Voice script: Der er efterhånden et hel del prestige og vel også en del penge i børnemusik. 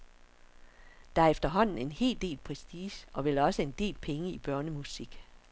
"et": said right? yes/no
no